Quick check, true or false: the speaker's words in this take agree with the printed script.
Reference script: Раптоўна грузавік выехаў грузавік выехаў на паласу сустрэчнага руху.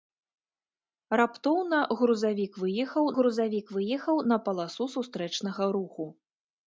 true